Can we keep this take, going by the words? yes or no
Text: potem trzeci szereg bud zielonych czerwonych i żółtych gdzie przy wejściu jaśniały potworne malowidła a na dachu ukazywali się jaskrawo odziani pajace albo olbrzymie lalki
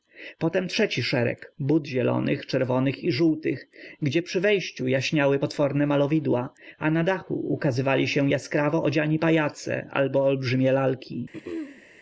yes